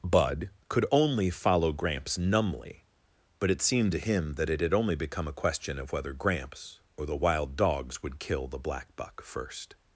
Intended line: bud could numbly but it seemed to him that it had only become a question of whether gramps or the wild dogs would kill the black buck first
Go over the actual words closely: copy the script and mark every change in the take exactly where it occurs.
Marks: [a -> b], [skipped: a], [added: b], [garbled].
bud could [added: only follow gramps] numbly but it seemed to him that it had only become a question of whether gramps or the wild dogs would kill the black buck first